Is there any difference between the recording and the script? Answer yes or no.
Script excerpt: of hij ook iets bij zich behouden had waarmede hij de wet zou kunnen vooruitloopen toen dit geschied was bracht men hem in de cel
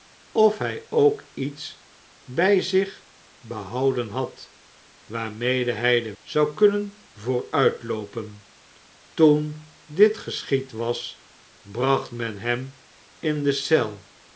yes